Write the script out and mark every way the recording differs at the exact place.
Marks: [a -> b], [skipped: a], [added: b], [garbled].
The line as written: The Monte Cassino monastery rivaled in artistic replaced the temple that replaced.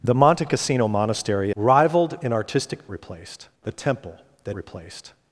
The Monte Cassino monastery rivaled in artistic replaced the temple that replaced.